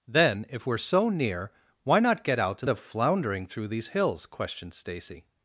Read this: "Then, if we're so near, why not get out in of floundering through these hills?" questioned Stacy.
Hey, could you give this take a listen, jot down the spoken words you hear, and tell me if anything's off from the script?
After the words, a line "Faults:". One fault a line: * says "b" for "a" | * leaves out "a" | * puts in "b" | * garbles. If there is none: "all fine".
"Then, if we're so near, why not get out in of floundering through these hills?" questioned Stacy.
Faults:
all fine